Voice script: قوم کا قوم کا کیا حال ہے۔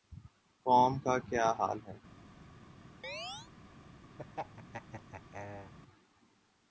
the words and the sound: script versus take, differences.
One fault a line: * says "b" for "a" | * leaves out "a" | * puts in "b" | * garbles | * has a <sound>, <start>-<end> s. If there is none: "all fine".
* leaves out "قوم کا"
* has a chirp, 3.0-3.5 s
* has a laugh, 4.2-5.7 s